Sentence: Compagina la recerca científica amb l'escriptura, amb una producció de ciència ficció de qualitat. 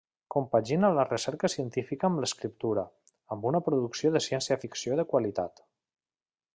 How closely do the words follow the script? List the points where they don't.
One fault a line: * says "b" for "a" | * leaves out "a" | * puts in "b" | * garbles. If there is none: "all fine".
all fine